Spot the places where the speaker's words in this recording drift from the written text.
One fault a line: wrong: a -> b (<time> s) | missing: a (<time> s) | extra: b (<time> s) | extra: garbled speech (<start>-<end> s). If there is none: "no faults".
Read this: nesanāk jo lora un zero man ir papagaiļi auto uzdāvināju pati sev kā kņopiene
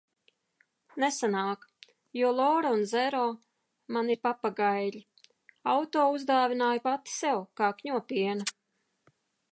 no faults